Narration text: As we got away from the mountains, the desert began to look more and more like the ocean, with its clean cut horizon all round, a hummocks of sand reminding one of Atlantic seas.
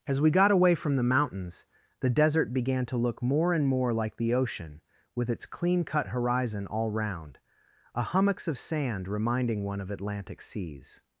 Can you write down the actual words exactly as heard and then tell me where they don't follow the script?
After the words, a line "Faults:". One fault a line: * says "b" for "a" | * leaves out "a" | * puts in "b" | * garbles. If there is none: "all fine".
As we got away from the mountains, the desert began to look more and more like the ocean, with its clean cut horizon all round, a hummocks of sand reminding one of Atlantic seas.
Faults:
all fine